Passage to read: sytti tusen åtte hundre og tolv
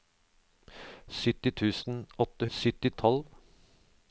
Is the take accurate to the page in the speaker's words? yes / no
no